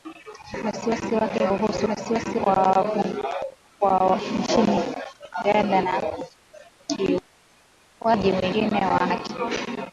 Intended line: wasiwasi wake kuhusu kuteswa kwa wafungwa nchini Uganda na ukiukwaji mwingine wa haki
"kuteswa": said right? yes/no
no